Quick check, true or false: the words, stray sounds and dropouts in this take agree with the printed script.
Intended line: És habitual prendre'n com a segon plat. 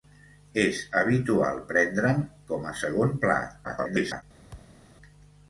false